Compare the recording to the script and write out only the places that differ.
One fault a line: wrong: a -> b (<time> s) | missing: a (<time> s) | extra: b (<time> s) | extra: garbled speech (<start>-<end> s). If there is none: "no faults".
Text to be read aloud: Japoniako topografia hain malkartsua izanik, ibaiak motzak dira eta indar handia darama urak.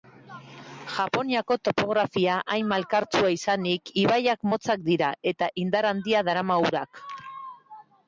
no faults